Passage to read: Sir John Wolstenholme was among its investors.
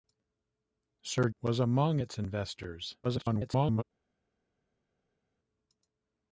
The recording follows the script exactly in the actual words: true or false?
false